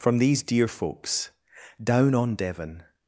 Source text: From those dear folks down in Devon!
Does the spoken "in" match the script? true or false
false